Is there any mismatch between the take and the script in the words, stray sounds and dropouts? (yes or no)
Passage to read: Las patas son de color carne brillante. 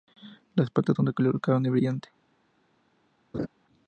yes